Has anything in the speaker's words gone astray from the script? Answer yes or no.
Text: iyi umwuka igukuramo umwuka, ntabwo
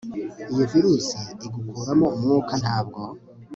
yes